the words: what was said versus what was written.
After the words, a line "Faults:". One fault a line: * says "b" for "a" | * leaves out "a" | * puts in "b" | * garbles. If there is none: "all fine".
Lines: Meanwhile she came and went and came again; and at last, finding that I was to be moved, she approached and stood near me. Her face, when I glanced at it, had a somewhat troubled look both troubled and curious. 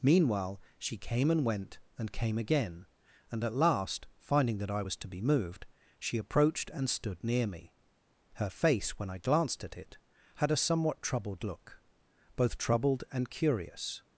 Meanwhile she came and went and came again; and at last, finding that I was to be moved, she approached and stood near me. Her face, when I glanced at it, had a somewhat troubled look both troubled and curious.
Faults:
all fine